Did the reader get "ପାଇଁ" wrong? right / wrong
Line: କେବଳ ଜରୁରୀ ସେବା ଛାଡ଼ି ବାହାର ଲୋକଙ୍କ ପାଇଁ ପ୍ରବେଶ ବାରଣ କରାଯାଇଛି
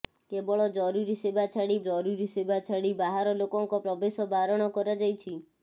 wrong